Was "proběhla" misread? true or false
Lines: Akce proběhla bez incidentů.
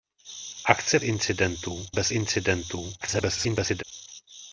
true